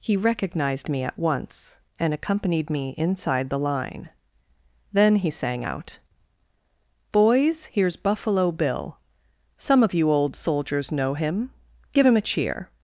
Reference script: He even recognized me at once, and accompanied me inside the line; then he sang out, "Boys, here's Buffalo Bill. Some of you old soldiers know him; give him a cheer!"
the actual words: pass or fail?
fail